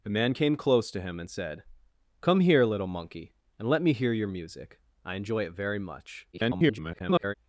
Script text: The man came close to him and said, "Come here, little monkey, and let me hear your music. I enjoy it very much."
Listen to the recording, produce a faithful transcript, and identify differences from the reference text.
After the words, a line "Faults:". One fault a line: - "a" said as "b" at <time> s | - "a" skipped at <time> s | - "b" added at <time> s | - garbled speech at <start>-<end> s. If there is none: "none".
The man came close to him and said, "Come here, little monkey, and let me hear your music. I enjoy it very much." [garbled]
Faults:
- garbled speech at 6.3-7.3 s